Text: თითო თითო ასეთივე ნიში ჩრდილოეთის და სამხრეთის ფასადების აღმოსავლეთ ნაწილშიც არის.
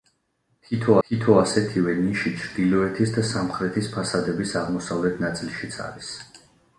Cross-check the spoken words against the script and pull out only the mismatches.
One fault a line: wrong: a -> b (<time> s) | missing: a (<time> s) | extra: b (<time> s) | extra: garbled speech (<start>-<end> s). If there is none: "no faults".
no faults